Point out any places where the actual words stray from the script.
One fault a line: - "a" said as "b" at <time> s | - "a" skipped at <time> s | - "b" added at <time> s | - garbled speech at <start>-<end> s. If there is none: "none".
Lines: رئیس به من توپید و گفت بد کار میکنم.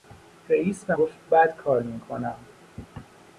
- "من توپید و" skipped at 0.9 s